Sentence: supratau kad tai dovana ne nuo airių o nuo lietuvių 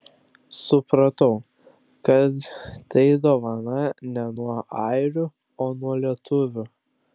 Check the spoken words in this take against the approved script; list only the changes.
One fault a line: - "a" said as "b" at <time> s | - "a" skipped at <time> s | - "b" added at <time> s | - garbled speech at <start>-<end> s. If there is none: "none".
none